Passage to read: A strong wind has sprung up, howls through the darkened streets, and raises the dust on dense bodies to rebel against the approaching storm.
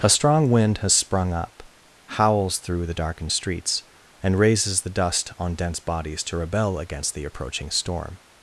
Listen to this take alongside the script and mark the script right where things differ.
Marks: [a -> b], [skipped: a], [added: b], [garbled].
A strong wind has sprung up, howls through the darkened streets, and raises the dust on dense bodies to rebel against the approaching storm.